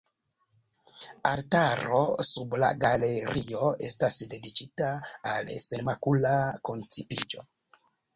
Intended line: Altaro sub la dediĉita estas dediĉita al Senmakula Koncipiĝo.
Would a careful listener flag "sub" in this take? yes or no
no